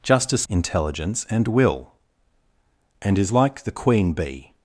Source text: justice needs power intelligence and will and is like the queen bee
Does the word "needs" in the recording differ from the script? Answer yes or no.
yes